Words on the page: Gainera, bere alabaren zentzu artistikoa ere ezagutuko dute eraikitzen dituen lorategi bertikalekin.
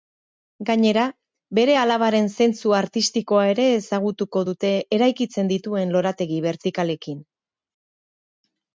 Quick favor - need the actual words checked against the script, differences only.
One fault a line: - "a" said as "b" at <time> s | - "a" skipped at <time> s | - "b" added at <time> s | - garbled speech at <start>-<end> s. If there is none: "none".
none